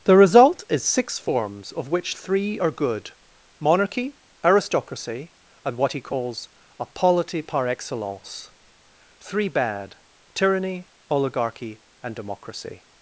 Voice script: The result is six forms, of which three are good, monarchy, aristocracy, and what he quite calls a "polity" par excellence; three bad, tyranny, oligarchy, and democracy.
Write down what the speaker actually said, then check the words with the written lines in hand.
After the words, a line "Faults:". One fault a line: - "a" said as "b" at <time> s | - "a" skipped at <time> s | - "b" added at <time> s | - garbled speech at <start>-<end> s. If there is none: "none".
The result is six forms, of which three are good, monarchy, aristocracy, and what he calls a "polity" par excellence; three bad, tyranny, oligarchy, and democracy.
Faults:
- "quite" skipped at 6.0 s